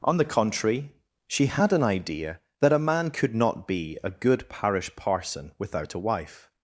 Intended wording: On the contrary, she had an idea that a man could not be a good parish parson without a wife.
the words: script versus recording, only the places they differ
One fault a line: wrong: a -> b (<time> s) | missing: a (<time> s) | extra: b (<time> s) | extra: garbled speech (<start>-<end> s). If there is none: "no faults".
no faults